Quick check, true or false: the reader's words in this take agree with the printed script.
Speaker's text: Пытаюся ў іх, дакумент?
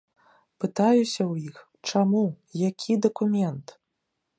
false